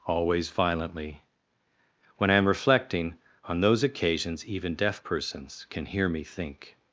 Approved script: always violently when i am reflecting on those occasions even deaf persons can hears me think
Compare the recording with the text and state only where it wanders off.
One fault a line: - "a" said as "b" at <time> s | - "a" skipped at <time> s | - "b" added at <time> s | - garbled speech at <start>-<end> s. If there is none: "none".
- "hears" said as "hear" at 5.9 s